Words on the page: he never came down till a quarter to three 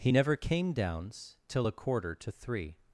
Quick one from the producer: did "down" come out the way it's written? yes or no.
no